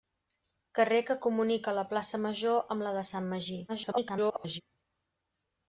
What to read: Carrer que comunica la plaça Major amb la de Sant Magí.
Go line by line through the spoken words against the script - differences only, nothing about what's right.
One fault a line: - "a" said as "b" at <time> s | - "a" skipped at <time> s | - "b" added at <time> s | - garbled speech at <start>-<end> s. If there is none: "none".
- garbled speech at 3.7-4.6 s